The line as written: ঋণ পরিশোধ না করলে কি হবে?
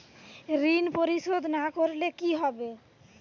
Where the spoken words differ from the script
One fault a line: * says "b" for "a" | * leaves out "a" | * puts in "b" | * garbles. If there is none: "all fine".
all fine